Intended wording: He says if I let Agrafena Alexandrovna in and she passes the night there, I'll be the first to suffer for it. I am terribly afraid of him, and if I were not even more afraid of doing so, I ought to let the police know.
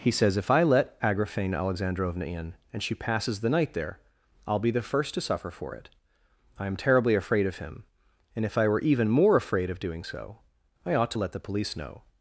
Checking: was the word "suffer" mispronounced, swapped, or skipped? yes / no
no